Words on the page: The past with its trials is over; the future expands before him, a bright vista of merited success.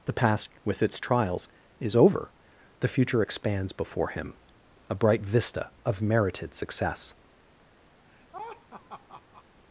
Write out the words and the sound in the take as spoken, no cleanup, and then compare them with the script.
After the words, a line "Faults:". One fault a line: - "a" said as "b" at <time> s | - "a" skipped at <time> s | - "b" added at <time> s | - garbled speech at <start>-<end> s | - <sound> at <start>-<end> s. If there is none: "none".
The past with its trials is over; the future expands before him, a bright vista of merited success.
Faults:
- laugh at 8.0-9.4 s